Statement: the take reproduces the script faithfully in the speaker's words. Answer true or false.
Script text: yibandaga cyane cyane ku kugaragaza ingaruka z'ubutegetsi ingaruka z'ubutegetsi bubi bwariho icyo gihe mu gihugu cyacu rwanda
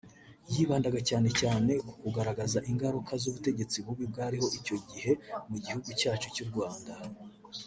false